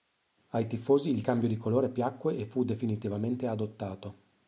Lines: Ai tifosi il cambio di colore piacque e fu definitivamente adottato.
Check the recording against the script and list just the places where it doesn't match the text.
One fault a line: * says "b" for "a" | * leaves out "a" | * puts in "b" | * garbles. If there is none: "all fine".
all fine